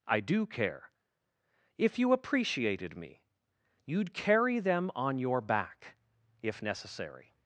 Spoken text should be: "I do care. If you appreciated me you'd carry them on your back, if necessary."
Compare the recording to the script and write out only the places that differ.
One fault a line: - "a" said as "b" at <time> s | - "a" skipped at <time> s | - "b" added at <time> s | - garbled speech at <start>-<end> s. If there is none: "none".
none